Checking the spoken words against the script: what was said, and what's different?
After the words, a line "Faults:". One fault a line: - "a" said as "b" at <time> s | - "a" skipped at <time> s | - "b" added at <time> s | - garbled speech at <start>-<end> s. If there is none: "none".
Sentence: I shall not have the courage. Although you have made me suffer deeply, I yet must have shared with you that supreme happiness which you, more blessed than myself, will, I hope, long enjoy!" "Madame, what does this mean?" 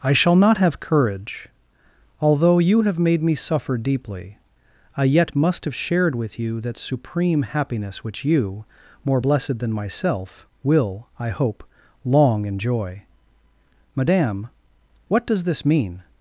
I shall not have courage. Although you have made me suffer deeply, I yet must have shared with you that supreme happiness which you, more blessed than myself, will, I hope, long enjoy!" "Madame, what does this mean?"
Faults:
- "the" skipped at 0.8 s